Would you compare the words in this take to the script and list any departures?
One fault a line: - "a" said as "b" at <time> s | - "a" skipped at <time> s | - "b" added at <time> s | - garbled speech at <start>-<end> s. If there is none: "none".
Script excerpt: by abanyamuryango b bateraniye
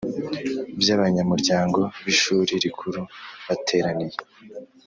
- "ishuri rikuru" added at 2.1 s